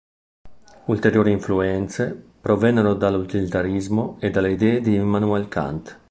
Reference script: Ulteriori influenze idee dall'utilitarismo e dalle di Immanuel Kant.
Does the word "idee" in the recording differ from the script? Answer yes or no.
yes